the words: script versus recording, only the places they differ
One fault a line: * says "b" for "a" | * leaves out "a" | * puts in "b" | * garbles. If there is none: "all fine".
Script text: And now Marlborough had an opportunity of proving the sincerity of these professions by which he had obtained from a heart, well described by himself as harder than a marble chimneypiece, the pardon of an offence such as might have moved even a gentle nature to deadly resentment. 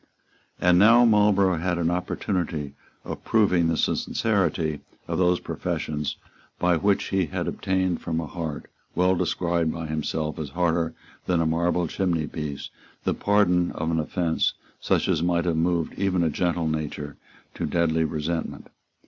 * says "those" for "these"